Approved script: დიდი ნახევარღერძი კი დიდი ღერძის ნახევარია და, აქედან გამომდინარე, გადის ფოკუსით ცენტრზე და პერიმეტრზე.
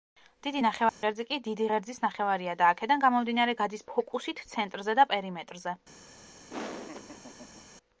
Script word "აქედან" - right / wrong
right